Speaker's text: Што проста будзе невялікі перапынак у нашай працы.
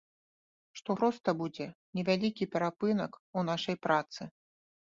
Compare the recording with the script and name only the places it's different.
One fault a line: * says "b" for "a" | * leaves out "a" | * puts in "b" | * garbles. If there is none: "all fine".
all fine